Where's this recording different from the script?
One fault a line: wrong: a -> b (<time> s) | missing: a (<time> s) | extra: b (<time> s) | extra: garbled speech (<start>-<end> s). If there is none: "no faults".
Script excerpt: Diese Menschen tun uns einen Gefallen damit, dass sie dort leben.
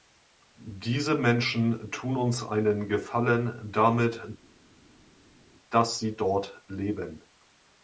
no faults